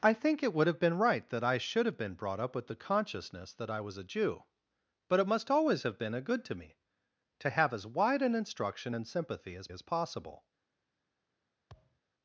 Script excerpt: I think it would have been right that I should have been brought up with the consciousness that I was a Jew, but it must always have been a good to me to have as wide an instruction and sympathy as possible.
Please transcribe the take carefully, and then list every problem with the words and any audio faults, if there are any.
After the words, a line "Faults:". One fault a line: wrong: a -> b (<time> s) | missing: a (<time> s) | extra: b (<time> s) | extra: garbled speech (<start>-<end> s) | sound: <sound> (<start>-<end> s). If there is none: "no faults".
I think it would have been right that I should have been brought up with the consciousness that I was a Jew, but it must always have been a good to me to have as wide an instruction and sympathy as as possible.
Faults:
extra: as (9.7 s)
sound: thud (11.7-12.0 s)